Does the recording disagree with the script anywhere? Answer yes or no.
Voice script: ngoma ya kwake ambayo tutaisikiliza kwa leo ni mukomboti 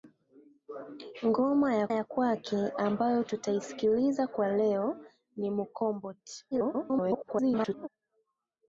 yes